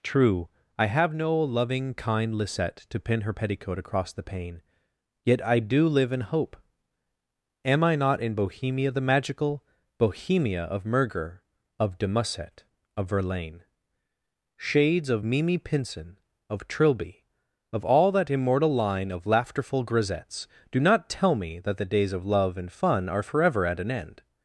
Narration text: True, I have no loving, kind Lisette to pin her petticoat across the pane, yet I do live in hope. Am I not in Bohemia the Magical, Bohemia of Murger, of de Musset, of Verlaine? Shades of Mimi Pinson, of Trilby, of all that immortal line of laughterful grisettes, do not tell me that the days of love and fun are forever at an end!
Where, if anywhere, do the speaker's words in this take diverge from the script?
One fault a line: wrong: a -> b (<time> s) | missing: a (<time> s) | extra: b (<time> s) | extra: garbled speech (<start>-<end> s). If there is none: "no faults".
no faults